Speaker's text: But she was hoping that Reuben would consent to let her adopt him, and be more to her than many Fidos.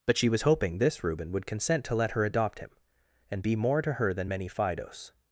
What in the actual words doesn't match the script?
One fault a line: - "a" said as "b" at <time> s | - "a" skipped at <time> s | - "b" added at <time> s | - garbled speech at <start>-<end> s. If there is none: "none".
- "that" said as "this" at 0.8 s